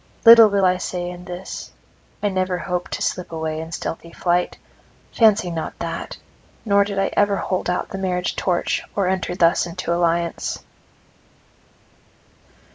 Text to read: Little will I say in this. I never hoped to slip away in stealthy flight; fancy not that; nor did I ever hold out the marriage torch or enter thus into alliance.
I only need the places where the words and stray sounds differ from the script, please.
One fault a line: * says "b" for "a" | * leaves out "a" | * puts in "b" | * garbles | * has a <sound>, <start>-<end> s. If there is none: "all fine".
all fine